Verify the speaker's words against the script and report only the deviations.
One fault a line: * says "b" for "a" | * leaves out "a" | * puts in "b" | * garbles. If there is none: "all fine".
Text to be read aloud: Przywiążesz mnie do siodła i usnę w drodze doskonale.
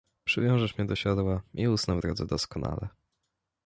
all fine